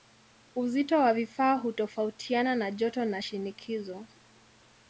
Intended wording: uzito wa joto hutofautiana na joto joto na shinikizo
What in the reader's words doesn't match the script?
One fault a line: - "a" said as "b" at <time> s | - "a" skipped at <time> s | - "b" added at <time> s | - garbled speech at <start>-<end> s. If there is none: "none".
- "joto" said as "vifaa" at 1.1 s
- "joto" skipped at 3.0 s